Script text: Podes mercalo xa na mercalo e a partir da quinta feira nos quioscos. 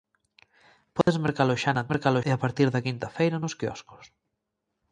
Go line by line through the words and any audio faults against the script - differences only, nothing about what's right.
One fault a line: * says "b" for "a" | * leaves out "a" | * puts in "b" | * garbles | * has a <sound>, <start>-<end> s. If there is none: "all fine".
* has a dropout, 1.0-1.1 s